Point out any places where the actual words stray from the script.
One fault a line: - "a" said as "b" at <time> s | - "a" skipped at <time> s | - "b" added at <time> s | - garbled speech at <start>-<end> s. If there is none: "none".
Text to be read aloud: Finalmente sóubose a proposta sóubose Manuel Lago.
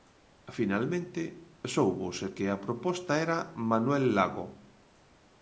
- "que" added at 2.4 s
- "sóubose" said as "era" at 3.2 s